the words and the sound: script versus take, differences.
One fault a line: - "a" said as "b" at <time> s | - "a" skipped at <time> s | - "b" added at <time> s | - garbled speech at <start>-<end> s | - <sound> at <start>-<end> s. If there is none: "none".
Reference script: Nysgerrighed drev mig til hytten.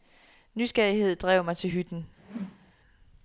- whoosh at 2.2-2.7 s